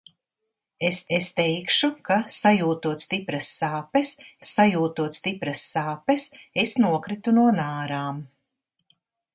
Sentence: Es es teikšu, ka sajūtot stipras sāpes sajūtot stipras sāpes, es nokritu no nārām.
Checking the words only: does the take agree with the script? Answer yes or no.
yes